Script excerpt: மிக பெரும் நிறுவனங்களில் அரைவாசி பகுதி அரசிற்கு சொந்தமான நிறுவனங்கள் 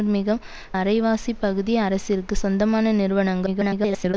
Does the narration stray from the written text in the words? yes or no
yes